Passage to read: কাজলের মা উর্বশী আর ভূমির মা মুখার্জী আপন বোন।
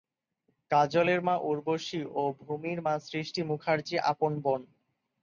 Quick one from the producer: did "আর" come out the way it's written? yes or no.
no